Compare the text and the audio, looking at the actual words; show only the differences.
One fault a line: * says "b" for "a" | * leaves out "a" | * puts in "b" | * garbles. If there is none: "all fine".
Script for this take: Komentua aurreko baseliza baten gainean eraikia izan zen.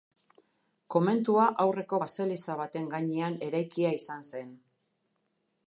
all fine